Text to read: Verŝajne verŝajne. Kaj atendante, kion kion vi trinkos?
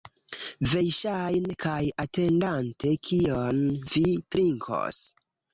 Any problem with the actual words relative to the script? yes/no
yes